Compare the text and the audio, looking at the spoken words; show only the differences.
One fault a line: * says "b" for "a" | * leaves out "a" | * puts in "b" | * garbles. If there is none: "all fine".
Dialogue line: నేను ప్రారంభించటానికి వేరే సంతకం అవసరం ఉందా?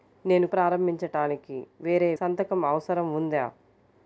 all fine